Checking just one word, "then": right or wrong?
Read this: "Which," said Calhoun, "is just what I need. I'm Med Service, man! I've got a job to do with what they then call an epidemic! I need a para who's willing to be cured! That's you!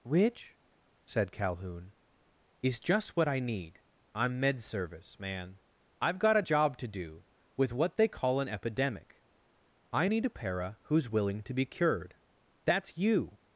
wrong